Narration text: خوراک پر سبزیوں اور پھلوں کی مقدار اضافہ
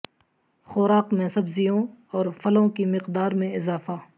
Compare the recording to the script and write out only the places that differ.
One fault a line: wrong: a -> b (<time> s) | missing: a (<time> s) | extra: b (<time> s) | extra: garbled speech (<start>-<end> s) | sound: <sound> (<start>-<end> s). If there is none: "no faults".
wrong: پر -> میں (1.1 s)
extra: میں (3.3 s)